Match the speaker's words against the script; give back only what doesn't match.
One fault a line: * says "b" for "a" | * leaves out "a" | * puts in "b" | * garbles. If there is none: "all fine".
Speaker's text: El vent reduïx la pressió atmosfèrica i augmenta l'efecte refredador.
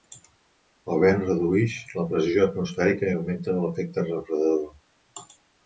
all fine